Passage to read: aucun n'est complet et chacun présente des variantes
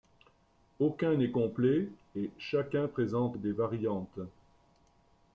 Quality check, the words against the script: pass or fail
pass